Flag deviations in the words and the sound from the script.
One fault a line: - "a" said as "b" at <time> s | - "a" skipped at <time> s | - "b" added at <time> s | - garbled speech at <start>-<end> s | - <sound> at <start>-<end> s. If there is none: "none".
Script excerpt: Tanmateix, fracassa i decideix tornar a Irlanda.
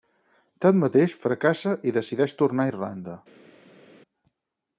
none